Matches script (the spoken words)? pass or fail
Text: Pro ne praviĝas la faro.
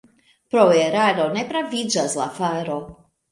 fail